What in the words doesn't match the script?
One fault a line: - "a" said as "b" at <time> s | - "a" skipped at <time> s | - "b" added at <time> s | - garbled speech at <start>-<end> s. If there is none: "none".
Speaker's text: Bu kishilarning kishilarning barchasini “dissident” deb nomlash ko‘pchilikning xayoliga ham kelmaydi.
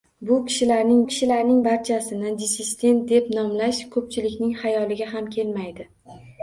none